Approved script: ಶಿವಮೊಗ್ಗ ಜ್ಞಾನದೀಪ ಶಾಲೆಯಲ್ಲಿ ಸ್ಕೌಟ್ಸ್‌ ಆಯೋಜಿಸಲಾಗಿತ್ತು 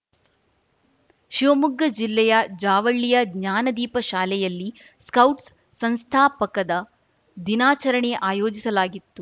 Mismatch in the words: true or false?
true